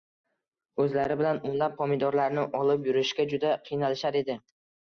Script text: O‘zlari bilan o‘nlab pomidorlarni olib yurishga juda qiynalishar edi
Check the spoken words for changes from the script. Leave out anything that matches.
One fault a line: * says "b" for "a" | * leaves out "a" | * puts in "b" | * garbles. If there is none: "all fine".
all fine